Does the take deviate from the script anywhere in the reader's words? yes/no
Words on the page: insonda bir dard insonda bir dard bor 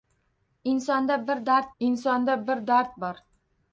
no